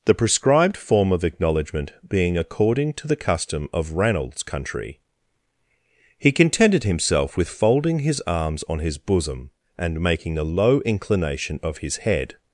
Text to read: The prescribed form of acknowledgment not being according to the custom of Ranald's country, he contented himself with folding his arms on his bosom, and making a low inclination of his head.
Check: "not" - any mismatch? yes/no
yes